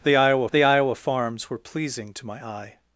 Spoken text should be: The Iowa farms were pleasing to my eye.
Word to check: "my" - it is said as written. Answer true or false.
true